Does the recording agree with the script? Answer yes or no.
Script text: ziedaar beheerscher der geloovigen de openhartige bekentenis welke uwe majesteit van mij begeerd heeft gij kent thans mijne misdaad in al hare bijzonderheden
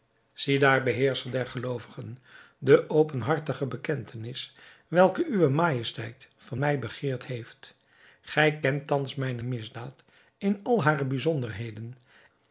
yes